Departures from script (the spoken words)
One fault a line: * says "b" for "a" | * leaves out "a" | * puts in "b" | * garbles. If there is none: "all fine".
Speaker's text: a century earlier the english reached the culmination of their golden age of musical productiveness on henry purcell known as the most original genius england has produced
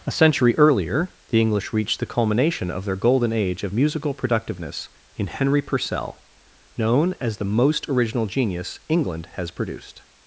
* says "in" for "on"